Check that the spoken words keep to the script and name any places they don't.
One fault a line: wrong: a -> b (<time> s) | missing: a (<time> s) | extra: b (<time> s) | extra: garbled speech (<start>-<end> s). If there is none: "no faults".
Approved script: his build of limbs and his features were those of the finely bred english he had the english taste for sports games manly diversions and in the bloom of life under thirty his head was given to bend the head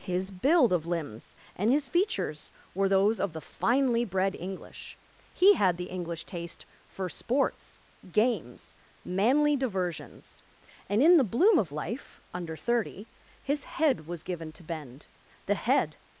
no faults